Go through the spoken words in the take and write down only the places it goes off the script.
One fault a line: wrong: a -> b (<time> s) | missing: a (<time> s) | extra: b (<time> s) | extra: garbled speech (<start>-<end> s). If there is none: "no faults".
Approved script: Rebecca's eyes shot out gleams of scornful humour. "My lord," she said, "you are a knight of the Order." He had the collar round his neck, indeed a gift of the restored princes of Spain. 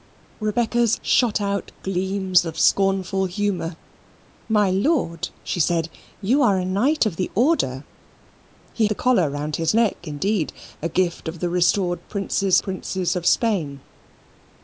missing: eyes (1.0 s)
missing: had (8.9 s)
extra: princes (12.6 s)